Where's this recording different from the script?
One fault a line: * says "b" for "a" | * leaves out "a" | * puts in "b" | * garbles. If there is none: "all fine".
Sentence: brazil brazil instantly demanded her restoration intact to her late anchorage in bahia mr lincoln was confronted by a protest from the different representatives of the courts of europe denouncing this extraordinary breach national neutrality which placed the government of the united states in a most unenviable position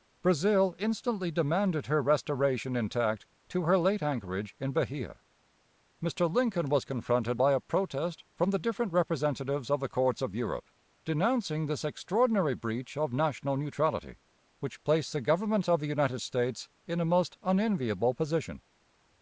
* leaves out "brazil"
* puts in "of"